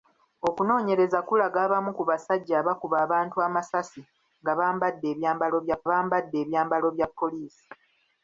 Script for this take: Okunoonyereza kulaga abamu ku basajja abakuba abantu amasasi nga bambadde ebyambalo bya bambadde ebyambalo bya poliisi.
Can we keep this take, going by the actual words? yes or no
yes